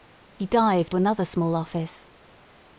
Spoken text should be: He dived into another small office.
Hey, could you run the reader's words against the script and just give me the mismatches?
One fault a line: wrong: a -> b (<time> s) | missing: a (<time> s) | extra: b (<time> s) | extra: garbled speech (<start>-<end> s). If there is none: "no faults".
missing: into (0.9 s)